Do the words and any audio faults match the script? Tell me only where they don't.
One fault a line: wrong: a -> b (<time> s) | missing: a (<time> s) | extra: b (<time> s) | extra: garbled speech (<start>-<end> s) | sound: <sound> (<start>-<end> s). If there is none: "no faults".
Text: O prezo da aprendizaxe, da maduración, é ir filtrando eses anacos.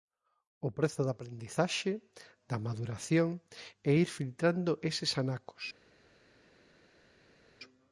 no faults